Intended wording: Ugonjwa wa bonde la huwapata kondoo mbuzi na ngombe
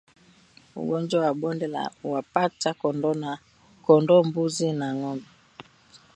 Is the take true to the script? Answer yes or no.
yes